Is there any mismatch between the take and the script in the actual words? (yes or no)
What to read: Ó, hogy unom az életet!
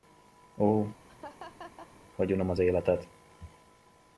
no